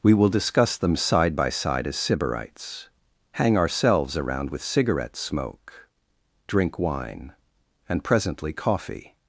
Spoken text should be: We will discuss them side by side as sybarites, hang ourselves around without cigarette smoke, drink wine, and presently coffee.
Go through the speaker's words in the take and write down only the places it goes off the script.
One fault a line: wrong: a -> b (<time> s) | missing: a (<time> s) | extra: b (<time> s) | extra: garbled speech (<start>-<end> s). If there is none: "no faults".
wrong: without -> with (4.5 s)